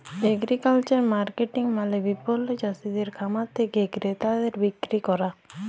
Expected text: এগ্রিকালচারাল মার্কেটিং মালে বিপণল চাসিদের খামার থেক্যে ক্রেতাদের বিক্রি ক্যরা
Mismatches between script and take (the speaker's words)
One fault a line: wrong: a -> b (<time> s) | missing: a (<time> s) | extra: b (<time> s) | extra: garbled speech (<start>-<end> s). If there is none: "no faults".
no faults